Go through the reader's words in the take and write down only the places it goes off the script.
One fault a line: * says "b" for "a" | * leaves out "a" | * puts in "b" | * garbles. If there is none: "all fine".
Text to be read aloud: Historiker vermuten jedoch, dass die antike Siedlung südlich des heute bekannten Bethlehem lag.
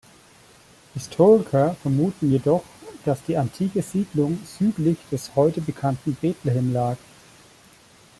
all fine